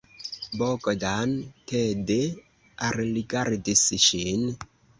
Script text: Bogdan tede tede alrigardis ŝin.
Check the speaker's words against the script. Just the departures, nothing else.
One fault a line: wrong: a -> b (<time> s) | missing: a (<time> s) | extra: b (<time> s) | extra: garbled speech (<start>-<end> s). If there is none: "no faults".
missing: tede (2.2 s)